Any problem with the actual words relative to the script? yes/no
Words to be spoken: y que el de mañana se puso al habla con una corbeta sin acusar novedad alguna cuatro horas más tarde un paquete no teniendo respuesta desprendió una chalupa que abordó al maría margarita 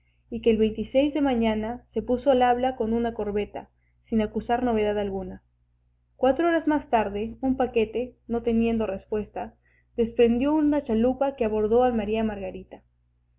no